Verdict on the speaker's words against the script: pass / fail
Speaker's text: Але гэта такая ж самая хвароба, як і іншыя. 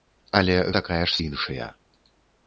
fail